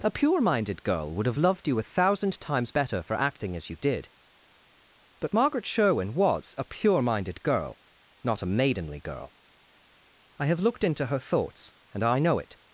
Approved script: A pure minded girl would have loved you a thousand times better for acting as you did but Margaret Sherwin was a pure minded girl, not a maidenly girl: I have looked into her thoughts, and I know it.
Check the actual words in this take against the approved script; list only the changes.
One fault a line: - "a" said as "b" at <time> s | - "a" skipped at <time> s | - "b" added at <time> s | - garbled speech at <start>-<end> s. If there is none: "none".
none